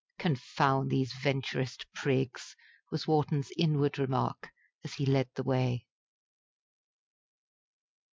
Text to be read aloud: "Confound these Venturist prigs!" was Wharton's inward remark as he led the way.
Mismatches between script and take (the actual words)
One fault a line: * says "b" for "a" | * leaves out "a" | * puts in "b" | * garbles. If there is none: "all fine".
all fine